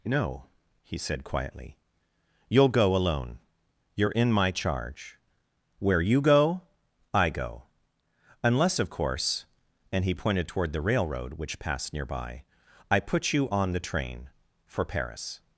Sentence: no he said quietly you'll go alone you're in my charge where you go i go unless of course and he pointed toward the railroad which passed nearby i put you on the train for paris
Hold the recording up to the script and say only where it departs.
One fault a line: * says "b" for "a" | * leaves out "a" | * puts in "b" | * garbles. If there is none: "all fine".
all fine